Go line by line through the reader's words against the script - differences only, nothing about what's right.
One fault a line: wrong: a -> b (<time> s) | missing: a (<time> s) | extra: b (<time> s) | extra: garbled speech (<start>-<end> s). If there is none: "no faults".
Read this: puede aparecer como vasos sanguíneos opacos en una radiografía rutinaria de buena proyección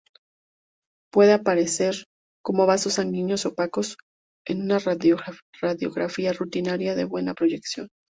no faults